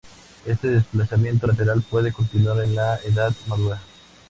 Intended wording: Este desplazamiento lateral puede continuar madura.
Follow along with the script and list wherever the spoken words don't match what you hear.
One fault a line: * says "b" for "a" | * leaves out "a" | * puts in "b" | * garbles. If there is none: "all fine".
* puts in "en la edad"